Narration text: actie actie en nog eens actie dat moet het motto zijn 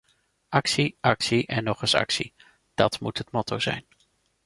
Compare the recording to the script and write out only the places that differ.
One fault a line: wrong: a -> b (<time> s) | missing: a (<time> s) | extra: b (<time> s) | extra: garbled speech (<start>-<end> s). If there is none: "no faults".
no faults